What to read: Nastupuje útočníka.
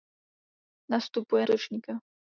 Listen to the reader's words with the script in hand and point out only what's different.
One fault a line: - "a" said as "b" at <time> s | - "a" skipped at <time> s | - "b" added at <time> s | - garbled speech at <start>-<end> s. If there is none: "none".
none